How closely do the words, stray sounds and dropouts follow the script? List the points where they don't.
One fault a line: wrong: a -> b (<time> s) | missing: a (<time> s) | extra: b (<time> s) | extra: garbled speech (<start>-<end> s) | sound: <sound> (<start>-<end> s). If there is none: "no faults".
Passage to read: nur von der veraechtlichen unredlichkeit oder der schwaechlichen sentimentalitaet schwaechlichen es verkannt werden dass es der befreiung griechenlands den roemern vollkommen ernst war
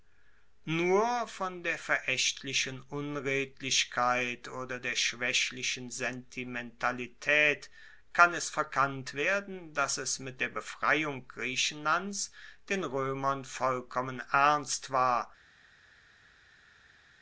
wrong: schwaechlichen -> kann (8.1 s)
extra: mit (10.2 s)